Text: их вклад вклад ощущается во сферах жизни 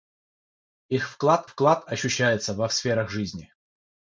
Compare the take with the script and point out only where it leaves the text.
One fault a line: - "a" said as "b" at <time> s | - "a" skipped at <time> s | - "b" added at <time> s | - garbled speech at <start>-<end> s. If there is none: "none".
none